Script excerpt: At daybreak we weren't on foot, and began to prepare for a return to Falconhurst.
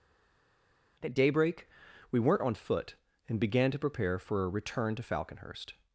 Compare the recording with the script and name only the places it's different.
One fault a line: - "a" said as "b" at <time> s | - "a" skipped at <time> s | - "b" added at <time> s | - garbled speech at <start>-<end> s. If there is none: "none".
none